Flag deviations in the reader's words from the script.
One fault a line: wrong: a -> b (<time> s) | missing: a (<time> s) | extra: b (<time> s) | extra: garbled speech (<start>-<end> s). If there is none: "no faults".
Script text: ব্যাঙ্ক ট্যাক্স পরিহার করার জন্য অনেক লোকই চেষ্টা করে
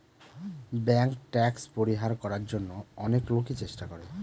no faults